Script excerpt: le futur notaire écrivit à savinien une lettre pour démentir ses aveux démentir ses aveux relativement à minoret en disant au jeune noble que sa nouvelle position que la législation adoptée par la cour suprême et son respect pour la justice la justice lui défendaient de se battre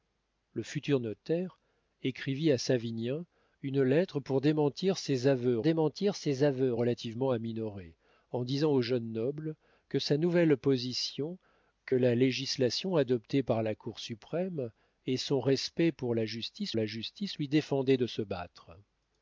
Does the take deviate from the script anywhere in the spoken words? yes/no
no